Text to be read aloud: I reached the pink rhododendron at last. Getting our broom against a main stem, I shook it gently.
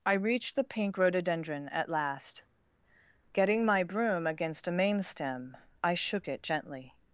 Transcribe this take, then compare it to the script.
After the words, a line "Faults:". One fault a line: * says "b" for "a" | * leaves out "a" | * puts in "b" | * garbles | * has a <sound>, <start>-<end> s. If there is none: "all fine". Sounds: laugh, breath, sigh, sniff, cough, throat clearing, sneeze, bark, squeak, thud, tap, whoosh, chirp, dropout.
I reached the pink rhododendron at last. Getting my broom against a main stem, I shook it gently.
Faults:
* says "my" for "our"